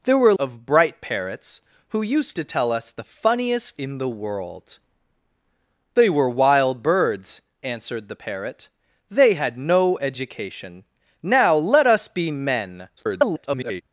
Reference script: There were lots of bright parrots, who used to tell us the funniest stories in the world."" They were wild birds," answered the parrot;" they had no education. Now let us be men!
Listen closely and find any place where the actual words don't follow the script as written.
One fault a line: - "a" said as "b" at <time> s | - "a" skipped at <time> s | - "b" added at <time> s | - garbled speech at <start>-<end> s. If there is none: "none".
- "lots" skipped at 0.3 s
- "stories" skipped at 3.8 s
- garbled speech at 13.0-13.8 s